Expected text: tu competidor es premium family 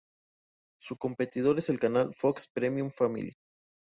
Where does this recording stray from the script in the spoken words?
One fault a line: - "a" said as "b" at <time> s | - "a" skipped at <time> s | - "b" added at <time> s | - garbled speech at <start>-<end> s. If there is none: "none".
- "tu" said as "su" at 0.8 s
- "el canal fox" added at 1.7 s